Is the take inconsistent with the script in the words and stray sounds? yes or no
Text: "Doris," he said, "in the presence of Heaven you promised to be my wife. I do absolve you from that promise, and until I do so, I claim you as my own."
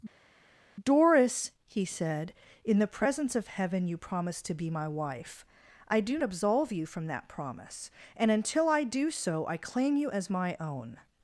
no